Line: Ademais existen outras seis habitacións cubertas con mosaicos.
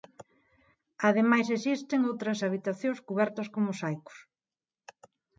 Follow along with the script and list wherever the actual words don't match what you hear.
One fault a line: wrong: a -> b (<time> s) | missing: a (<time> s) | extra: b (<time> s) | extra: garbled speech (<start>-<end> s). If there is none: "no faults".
missing: seis (2.4 s)